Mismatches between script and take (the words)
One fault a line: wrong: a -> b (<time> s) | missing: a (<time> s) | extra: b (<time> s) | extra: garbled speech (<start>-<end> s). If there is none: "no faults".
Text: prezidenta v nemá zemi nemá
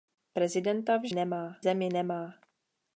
no faults